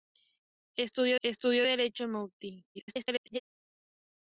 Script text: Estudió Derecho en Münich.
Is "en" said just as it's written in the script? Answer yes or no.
yes